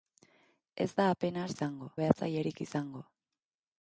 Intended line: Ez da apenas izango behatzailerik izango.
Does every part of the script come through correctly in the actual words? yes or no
yes